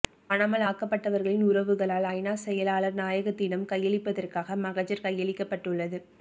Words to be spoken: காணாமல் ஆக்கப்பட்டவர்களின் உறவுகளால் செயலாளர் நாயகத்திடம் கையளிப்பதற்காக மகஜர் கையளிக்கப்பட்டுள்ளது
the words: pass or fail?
fail